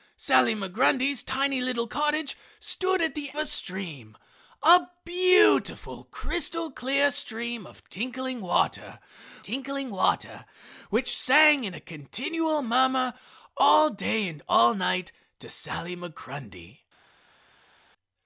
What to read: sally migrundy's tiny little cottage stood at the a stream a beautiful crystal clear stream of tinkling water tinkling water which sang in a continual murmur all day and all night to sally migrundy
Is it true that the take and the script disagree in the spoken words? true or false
false